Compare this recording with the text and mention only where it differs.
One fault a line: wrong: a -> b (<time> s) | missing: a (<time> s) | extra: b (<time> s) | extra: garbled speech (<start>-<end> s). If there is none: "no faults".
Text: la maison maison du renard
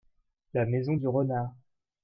missing: maison (0.9 s)